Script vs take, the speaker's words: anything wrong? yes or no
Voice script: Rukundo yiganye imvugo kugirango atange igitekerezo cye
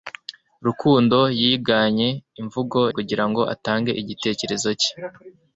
no